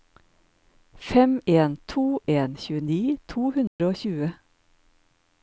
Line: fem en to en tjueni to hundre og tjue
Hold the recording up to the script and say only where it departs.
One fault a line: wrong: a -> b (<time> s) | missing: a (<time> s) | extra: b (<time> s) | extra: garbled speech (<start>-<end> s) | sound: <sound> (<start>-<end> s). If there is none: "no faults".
sound: dropout (3.7-3.8 s)